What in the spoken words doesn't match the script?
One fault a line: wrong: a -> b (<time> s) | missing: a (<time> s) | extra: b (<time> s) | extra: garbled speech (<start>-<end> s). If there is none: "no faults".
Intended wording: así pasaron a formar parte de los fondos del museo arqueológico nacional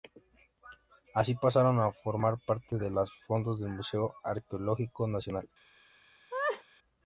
no faults